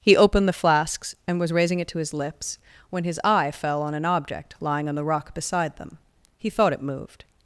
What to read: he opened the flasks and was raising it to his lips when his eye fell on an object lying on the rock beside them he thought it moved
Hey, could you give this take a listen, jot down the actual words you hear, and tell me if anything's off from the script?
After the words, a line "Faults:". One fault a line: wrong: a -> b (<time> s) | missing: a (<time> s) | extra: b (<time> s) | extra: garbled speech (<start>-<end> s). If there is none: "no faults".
he opened the flasks and was raising it to his lips when his eye fell on an object lying on the rock beside them he thought it moved
Faults:
no faults